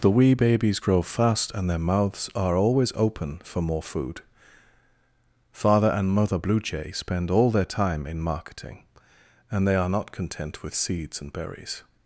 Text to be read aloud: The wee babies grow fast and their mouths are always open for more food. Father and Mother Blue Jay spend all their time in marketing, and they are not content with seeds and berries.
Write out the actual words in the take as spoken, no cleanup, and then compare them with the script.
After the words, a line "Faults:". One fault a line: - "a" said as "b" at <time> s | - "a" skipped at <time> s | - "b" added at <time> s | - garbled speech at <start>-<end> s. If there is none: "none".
The wee babies grow fast and their mouths are always open for more food. Father and Mother Blue Jay spend all their time in marketing, and they are not content with seeds and berries.
Faults:
none